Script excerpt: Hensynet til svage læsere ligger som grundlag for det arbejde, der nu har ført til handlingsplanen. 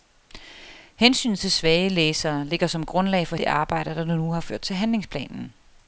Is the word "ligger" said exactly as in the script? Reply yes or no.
yes